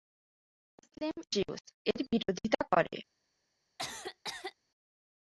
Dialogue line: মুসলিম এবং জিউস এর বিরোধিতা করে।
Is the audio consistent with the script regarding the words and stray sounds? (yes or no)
no